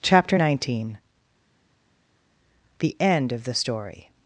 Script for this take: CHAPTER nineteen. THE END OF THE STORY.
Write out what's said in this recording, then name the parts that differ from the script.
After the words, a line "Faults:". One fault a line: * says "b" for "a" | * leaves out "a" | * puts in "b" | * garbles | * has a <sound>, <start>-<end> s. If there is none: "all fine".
CHAPTER nineteen. THE END OF THE STORY.
Faults:
all fine